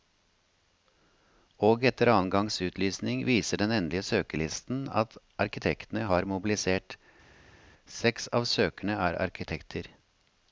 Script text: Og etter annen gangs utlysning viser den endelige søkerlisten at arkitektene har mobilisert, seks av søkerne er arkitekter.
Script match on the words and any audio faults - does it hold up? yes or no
yes